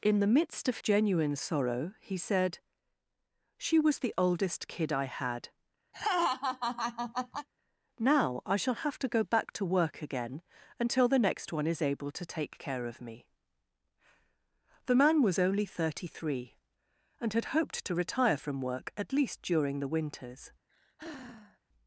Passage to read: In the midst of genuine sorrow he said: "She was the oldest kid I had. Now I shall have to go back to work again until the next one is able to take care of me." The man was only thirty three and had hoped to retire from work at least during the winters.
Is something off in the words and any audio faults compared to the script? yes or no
yes